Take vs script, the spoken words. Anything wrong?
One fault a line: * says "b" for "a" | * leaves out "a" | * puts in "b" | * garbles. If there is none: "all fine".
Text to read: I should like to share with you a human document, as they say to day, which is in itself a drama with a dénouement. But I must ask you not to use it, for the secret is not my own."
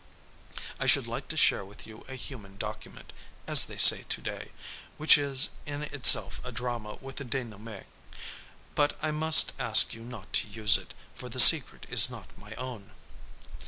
all fine